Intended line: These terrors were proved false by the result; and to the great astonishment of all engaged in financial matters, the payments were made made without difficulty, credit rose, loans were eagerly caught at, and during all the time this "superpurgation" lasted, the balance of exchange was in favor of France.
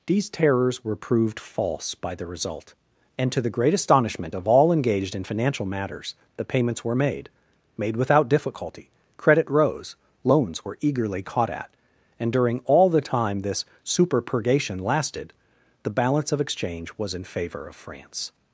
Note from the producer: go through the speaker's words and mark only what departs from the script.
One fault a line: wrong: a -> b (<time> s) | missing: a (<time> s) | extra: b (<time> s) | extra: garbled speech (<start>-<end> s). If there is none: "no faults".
no faults